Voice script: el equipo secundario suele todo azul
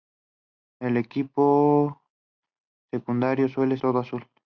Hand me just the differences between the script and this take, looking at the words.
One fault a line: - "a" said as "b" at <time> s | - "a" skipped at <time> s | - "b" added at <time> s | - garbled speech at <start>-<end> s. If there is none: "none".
none